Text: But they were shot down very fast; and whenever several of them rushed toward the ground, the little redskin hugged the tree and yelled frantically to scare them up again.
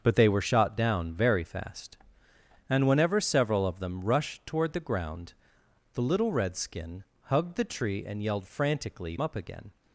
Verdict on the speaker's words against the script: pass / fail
fail